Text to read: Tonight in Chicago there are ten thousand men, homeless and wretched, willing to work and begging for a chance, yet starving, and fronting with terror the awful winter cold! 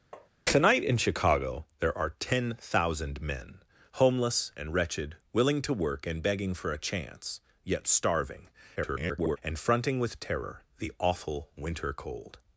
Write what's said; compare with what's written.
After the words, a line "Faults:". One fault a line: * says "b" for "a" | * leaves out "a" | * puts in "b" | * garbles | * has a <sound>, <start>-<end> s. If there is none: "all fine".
Tonight in Chicago there are ten thousand men, homeless and wretched, willing to work and begging for a chance, yet starving, [garbled] and fronting with terror the awful winter cold!
Faults:
* has a tap, 0.1-0.3 s
* garbles